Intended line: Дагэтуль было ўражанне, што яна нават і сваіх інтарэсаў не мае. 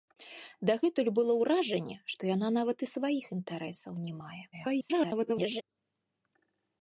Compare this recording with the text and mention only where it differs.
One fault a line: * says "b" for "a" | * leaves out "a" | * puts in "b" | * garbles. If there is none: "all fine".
* garbles